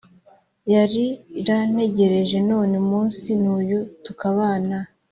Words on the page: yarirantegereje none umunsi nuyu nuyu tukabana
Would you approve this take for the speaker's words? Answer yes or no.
no